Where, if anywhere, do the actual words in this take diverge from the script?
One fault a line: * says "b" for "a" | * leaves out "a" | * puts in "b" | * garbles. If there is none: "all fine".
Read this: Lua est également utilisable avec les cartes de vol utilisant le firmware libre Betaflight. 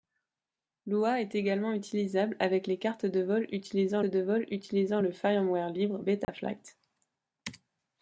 * puts in "de vol utilisant"